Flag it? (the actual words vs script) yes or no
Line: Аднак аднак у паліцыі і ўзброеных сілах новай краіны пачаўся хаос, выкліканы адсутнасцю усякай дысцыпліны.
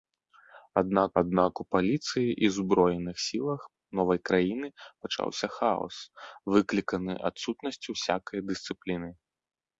no